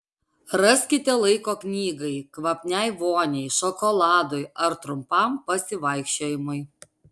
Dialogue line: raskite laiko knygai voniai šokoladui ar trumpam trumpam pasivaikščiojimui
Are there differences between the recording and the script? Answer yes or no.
yes